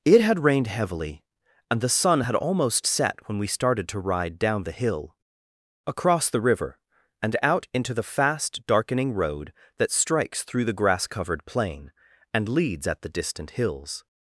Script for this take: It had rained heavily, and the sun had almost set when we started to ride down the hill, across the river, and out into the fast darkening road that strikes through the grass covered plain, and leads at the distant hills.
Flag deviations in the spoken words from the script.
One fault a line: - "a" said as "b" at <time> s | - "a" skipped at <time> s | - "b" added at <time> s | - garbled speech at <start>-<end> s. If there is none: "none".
none